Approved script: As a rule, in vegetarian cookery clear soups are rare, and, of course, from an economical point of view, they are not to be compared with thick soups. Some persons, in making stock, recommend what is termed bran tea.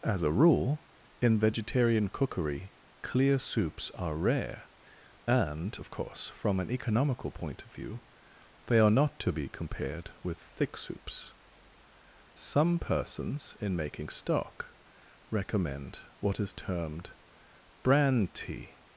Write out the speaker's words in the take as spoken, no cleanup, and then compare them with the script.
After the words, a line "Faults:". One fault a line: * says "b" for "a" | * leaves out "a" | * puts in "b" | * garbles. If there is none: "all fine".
As a rule, in vegetarian cookery clear soups are rare, and, of course, from an economical point of view, they are not to be compared with thick soups. Some persons, in making stock, recommend what is termed bran tea.
Faults:
all fine